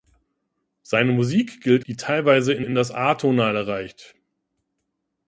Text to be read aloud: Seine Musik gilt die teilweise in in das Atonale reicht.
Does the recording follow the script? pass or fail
pass